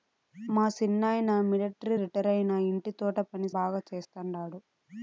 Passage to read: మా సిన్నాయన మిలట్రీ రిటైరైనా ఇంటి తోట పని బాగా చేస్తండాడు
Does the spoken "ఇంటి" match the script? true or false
true